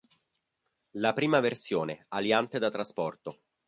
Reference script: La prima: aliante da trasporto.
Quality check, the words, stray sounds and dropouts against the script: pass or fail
fail